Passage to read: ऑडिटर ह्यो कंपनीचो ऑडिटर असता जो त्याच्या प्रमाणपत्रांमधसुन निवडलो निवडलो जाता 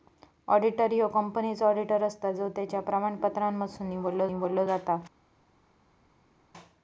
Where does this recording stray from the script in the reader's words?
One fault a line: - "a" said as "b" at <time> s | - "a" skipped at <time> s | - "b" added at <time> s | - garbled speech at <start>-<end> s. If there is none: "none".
none